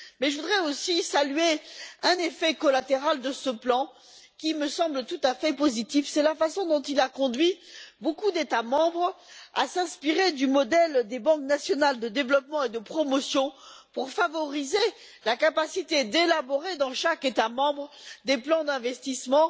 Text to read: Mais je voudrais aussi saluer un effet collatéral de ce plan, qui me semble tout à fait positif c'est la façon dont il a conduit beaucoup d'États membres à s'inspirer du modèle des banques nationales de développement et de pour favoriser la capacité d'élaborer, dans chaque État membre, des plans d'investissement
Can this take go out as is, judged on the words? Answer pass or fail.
fail